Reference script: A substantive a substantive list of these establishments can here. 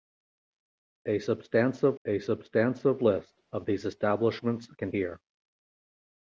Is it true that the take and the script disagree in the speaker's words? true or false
false